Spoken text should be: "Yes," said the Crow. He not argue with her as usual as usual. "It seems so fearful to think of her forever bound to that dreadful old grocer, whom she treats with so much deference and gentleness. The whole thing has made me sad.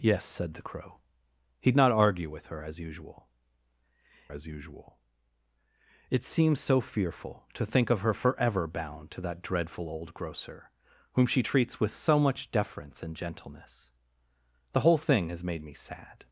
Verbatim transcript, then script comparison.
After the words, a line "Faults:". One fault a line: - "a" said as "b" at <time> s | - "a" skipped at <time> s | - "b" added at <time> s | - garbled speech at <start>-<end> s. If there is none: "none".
"Yes," said the Crow. He not argue with her as usual as usual. "It seems so fearful to think of her forever bound to that dreadful old grocer, whom she treats with so much deference and gentleness. The whole thing has made me sad.
Faults:
none